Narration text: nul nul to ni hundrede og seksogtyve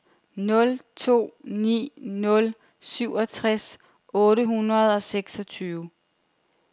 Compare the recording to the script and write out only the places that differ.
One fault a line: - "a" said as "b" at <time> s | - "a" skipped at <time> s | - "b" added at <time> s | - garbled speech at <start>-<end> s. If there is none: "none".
- "to ni" added at 0.9 s
- "to ni" said as "syvogtres otte" at 2.8 s